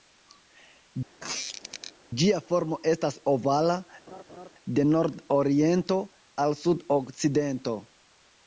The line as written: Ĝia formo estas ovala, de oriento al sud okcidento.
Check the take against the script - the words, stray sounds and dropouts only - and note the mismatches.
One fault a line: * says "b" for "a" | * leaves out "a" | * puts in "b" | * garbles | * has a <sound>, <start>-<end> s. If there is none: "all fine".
* has a squeak, 1.2-1.9 s
* has a laugh, 4.1-4.5 s
* puts in "nord"